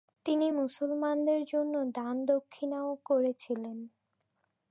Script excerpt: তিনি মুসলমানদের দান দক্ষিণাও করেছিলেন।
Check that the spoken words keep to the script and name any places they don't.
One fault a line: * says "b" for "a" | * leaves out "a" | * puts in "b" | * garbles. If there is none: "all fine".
* puts in "জন্য"